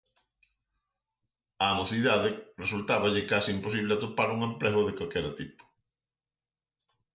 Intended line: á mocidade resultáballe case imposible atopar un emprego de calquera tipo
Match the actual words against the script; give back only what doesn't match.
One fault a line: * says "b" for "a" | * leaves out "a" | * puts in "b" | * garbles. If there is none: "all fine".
all fine